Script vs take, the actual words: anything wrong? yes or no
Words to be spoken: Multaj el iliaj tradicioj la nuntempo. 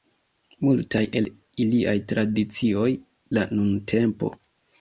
no